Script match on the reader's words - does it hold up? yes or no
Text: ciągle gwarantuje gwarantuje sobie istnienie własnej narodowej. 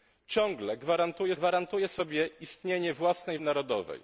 yes